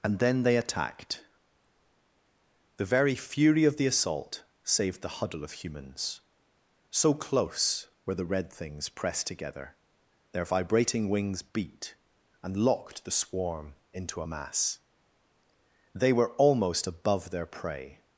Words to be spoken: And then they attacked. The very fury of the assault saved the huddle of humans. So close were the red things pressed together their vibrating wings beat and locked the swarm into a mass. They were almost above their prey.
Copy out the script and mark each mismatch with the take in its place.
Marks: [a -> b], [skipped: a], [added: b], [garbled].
And then they attacked. The very fury of the assault saved the huddle of humans. So close were the red things pressed together their vibrating wings beat and locked the swarm into a mass. They were almost above their prey.